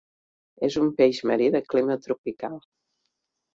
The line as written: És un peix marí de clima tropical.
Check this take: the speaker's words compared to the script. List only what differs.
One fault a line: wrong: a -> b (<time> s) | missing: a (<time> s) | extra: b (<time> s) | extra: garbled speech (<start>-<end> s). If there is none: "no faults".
no faults